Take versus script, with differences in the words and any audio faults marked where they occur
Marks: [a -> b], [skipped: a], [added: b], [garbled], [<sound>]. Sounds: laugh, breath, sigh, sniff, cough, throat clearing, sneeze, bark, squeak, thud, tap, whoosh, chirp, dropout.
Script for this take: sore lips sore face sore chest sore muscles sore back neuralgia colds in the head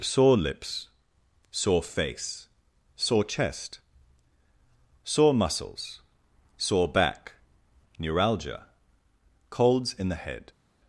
sore lips sore face sore chest sore muscles sore back neuralgia colds in the head